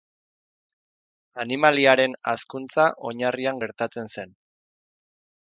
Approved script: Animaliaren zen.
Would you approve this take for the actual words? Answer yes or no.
no